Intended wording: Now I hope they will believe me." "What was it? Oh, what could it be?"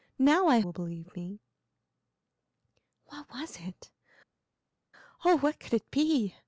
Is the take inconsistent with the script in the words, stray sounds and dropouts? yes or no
yes